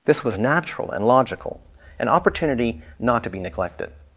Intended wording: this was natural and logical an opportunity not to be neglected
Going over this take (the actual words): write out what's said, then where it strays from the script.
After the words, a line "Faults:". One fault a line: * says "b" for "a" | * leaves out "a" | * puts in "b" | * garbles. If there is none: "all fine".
this was natural and logical an opportunity not to be neglected
Faults:
all fine